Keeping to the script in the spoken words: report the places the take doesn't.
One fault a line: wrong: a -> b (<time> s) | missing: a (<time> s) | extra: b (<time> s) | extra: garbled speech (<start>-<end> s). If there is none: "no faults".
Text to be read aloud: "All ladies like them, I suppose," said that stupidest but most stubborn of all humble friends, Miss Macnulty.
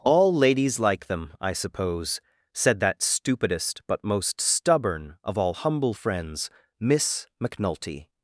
no faults